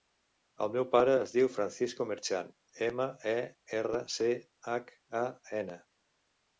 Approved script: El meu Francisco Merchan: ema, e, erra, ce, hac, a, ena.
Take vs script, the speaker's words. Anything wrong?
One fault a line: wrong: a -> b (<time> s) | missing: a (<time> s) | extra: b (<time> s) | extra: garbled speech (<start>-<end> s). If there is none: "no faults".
extra: pare es diu (0.9 s)